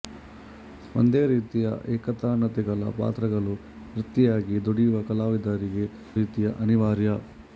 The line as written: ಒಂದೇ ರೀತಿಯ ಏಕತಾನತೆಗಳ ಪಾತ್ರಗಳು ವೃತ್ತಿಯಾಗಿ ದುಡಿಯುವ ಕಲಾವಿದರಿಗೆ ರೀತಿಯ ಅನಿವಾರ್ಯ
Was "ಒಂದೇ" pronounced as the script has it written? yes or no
yes